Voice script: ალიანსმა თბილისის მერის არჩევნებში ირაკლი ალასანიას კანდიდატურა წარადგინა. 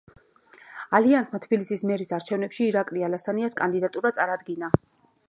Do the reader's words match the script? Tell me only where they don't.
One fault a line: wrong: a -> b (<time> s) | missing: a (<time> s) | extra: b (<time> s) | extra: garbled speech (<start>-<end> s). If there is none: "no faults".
no faults